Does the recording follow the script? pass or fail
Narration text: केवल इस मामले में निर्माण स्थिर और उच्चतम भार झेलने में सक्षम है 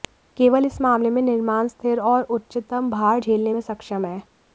pass